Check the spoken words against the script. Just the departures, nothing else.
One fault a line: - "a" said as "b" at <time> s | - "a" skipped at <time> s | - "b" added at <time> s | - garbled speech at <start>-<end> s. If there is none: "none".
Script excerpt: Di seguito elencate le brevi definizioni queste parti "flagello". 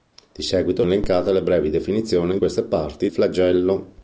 none